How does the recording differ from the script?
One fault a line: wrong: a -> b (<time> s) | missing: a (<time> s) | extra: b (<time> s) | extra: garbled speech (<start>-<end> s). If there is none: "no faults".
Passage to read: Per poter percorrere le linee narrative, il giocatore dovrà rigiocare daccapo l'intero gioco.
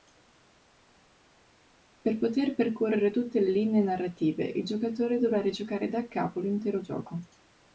extra: tutte (3.1 s)